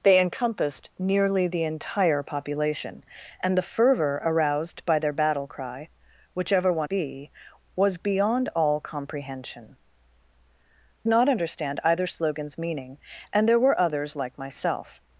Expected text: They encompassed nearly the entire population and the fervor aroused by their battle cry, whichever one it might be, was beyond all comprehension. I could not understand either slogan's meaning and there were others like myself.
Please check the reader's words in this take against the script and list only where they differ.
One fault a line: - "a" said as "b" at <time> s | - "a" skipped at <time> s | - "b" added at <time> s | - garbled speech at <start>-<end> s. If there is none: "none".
- "it might" skipped at 6.9 s
- "I could" skipped at 9.8 s